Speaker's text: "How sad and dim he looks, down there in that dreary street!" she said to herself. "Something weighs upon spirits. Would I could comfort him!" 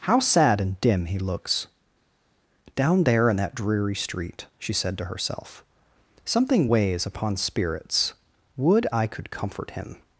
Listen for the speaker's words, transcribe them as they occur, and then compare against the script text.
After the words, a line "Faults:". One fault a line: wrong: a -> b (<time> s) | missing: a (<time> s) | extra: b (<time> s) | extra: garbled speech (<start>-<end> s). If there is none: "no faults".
"How sad and dim he looks, down there in that dreary street!" she said to herself. "Something weighs upon spirits. Would I could comfort him!"
Faults:
no faults